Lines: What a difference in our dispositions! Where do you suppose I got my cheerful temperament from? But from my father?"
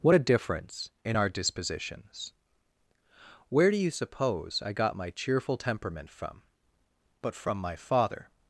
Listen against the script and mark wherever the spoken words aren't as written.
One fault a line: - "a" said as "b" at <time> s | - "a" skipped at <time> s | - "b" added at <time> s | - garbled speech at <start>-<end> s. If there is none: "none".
none